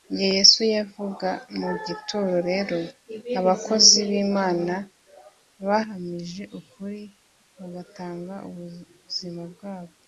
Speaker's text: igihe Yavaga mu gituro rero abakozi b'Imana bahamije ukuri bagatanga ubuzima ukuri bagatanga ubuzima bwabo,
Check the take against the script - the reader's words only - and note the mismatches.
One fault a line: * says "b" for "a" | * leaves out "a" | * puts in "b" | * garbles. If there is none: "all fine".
* puts in "Yesu"
* leaves out "ukuri bagatanga ubuzima"